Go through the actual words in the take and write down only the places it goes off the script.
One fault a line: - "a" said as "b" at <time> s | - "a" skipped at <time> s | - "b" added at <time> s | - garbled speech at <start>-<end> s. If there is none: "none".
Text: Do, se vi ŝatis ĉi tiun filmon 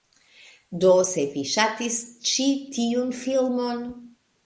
none